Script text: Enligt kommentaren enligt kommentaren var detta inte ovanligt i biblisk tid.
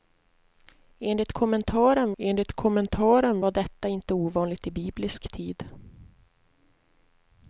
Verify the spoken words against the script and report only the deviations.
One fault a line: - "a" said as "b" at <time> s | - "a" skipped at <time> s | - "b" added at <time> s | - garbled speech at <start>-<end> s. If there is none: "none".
none